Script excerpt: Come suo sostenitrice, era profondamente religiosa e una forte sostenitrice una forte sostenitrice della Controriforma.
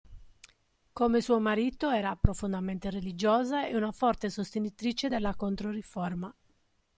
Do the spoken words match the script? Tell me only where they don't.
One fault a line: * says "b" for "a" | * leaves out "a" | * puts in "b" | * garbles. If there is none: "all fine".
* says "marito" for "sostenitrice"
* leaves out "una forte sostenitrice"